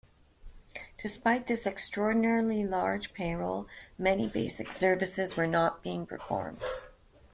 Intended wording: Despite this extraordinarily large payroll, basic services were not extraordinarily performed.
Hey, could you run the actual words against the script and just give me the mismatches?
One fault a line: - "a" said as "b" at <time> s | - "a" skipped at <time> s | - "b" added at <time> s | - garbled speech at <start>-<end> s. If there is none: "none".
- "many" added at 4.0 s
- "extraordinarily" said as "being" at 5.8 s